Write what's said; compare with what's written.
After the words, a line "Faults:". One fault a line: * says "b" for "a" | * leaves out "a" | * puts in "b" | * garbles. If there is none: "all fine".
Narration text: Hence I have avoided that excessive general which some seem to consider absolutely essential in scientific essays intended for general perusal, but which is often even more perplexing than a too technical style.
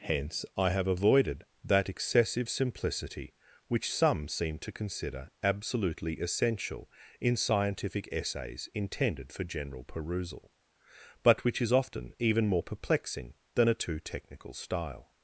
Hence I have avoided that excessive simplicity which some seem to consider absolutely essential in scientific essays intended for general perusal, but which is often even more perplexing than a too technical style.
Faults:
* says "simplicity" for "general"